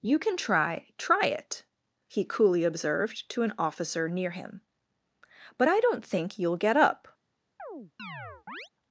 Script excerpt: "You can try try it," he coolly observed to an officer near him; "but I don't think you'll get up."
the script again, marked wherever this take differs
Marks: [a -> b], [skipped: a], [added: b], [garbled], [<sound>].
"You can try try it," he coolly observed to an officer near him; "but I don't think you'll get up." [chirp]